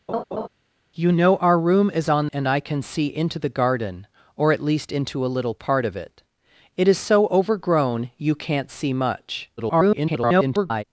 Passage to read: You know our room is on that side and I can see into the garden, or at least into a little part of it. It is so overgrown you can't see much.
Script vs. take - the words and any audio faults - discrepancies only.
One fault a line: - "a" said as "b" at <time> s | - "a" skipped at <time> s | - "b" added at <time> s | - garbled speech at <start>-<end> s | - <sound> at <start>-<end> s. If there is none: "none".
- laugh at 0.1-0.5 s
- "that side" skipped at 2.3 s
- garbled speech at 9.6-10.8 s